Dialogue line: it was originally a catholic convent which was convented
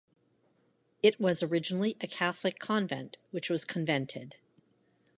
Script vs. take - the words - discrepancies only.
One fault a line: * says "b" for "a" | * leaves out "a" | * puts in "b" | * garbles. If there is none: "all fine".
all fine